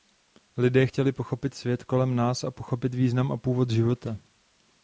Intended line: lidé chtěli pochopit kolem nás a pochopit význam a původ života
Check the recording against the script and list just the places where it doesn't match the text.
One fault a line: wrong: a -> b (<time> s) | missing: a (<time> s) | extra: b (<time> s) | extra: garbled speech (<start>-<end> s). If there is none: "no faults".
extra: svět (1.5 s)